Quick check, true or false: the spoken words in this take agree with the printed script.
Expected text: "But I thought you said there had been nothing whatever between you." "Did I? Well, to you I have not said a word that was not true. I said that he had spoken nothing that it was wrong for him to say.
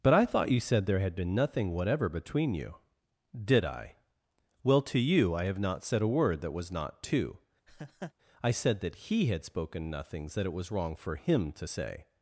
false